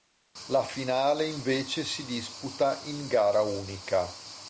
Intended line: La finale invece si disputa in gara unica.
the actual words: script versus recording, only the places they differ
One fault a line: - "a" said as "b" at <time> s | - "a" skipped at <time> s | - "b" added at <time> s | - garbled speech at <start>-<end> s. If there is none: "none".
none